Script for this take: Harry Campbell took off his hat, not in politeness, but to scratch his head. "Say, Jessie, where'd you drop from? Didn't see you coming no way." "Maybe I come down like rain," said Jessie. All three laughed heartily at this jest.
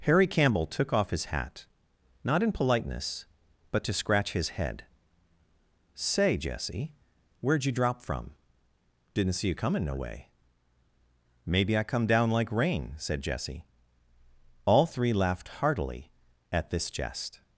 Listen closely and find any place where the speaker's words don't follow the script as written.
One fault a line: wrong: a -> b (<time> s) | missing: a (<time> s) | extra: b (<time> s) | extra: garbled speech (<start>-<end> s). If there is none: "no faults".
no faults